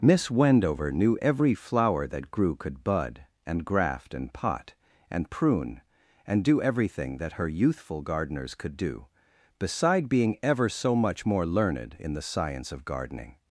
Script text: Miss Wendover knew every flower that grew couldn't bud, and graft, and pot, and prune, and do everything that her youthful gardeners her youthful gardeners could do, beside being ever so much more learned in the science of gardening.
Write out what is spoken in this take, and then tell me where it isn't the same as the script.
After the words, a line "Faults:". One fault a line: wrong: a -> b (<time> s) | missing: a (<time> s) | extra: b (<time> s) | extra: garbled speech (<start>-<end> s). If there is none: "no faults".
Miss Wendover knew every flower that grew could bud, and graft, and pot, and prune, and do everything that her youthful gardeners could do, beside being ever so much more learned in the science of gardening.
Faults:
wrong: couldn't -> could (2.5 s)
missing: her youthful gardeners (8.5 s)